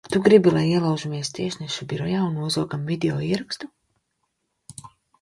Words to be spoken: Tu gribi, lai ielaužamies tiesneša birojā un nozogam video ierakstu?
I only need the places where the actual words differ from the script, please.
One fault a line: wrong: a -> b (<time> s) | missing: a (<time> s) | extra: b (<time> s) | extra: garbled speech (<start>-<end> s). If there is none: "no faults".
no faults